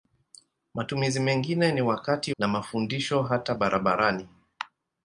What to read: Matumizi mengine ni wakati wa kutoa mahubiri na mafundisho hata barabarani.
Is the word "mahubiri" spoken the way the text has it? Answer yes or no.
no